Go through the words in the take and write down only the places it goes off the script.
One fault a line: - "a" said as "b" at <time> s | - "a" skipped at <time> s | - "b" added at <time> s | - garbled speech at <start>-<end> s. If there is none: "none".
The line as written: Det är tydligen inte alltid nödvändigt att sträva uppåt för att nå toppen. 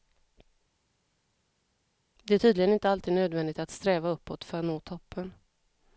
none